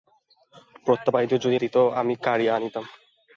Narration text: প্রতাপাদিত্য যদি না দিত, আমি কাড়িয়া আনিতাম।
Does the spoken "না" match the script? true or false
false